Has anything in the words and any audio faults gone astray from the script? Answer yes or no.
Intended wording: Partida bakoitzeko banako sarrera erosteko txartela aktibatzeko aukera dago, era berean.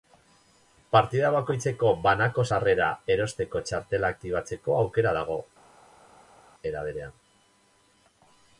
no